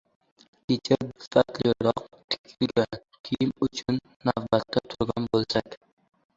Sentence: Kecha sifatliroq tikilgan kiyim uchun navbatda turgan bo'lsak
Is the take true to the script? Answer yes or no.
yes